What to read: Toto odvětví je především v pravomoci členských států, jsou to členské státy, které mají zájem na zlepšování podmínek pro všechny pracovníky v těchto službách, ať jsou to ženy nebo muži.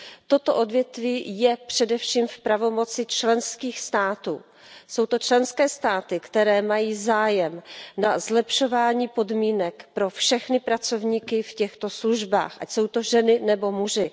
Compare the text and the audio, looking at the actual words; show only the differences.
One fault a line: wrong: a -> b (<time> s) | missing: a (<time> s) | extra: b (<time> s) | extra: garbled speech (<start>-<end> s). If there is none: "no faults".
no faults